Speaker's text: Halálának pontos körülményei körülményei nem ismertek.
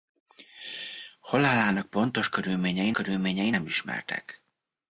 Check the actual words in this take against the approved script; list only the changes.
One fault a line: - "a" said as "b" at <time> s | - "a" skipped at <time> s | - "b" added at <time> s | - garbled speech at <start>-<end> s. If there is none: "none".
none